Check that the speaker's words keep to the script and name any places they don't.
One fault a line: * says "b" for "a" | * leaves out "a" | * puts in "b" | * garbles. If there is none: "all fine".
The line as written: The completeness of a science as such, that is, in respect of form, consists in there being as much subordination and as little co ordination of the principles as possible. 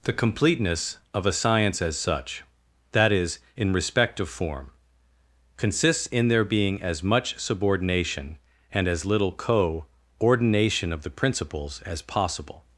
all fine